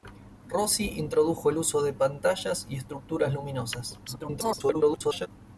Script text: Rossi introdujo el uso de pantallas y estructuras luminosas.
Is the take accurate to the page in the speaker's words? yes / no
no